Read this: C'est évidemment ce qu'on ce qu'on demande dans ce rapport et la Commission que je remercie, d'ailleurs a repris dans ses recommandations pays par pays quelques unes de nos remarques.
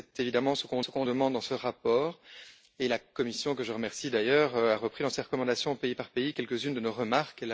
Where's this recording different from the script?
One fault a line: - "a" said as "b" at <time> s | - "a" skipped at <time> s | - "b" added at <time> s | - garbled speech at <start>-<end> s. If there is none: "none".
none